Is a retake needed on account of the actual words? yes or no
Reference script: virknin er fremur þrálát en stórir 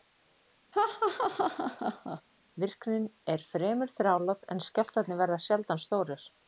yes